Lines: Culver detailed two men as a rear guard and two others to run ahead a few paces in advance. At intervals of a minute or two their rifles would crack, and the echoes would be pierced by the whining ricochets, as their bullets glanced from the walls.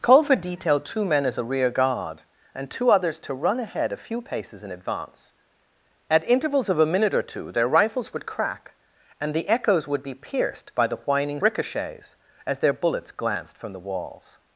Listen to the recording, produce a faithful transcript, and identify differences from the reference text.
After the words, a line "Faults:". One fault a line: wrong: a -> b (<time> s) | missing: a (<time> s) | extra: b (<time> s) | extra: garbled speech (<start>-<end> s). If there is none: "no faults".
Culver detailed two men as a rear guard and two others to run ahead a few paces in advance. At intervals of a minute or two their rifles would crack, and the echoes would be pierced by the whining ricochets, as their bullets glanced from the walls.
Faults:
no faults